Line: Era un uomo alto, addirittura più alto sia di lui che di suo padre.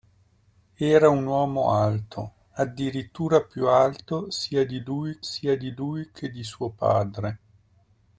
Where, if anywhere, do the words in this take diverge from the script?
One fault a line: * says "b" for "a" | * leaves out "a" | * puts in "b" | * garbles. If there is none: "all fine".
* puts in "sia di lui"